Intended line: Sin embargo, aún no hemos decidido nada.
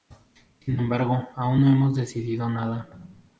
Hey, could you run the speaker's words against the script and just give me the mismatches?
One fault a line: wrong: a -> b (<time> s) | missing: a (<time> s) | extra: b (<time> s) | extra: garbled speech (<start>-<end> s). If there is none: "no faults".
no faults